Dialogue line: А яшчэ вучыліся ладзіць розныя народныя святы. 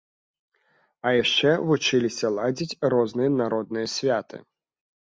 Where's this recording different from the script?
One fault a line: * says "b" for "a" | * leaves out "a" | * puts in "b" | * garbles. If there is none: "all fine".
all fine